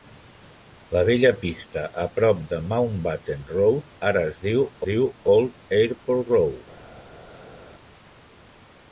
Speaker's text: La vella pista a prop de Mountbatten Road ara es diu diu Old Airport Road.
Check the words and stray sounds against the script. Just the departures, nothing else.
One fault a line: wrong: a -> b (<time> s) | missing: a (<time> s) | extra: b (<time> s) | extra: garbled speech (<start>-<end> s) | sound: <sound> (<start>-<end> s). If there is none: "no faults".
no faults